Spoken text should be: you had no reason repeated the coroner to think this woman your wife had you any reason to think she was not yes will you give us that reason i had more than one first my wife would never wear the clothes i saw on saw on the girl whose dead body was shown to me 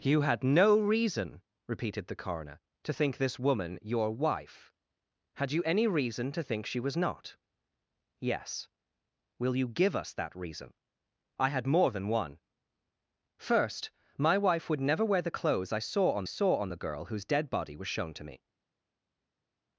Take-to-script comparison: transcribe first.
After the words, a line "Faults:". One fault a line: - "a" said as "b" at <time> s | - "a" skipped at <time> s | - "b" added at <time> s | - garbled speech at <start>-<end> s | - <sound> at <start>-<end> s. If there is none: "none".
you had no reason repeated the coroner to think this woman your wife had you any reason to think she was not yes will you give us that reason i had more than one first my wife would never wear the clothes i saw on saw on the girl whose dead body was shown to me
Faults:
none